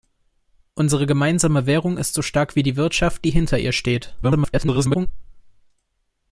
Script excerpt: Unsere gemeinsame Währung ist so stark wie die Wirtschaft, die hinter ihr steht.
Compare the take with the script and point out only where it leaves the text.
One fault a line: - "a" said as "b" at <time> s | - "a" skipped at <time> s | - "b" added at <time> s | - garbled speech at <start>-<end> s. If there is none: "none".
- garbled speech at 4.2-5.1 s